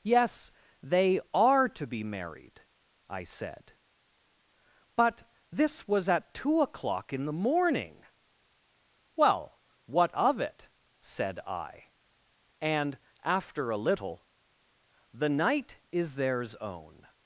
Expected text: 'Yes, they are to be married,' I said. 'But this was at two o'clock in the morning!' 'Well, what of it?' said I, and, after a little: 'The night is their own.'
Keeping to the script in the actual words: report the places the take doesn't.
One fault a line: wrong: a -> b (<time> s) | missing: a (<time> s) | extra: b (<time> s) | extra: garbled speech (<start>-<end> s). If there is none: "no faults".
wrong: their -> theirs (16.1 s)